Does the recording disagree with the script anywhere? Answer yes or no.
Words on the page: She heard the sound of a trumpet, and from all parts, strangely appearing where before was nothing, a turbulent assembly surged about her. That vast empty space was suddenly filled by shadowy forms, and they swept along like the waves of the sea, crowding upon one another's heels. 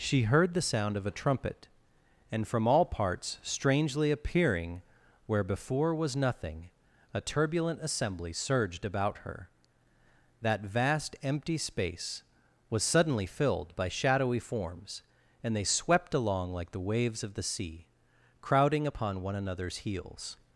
no